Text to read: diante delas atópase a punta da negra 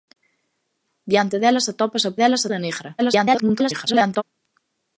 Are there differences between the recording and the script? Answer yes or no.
yes